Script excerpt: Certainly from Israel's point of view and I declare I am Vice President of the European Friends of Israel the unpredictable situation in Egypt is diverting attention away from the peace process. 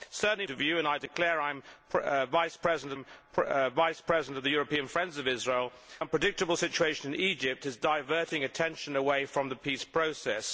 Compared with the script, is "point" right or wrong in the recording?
wrong